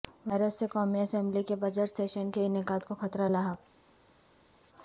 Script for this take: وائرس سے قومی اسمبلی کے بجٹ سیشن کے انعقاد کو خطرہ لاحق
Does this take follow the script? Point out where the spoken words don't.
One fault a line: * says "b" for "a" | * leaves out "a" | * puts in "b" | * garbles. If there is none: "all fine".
all fine